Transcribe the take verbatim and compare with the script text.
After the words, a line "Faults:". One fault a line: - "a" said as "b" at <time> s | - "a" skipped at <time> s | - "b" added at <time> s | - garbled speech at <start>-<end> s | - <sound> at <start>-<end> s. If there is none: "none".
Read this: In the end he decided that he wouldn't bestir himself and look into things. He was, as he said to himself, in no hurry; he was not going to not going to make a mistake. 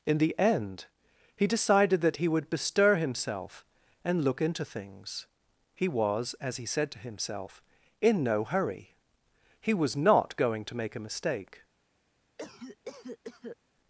In the end he decided that he would bestir himself and look into things. He was, as he said to himself, in no hurry; he was not going to make a mistake.
Faults:
- "wouldn't" said as "would" at 2.3 s
- "not going to" skipped at 10.8 s
- cough at 12.4-13.6 s